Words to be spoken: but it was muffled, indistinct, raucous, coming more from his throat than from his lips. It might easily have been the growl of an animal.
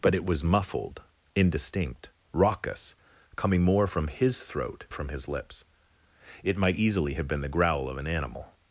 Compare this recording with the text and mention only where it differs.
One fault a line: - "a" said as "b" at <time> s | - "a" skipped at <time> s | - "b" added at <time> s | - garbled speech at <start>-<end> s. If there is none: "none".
- "than" skipped at 4.9 s